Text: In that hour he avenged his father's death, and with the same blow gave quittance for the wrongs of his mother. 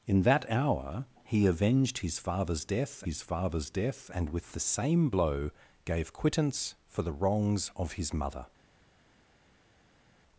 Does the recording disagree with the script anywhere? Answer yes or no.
yes